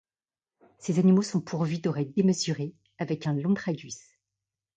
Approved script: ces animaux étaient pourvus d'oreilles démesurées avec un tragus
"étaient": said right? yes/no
no